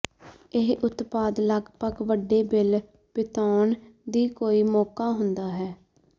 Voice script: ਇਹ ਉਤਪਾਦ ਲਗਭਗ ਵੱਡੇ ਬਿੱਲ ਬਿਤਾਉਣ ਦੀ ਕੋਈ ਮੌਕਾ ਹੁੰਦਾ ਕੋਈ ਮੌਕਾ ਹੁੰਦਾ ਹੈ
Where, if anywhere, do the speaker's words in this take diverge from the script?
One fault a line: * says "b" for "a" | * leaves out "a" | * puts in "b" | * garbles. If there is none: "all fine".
* leaves out "ਕੋਈ ਮੌਕਾ ਹੁੰਦਾ"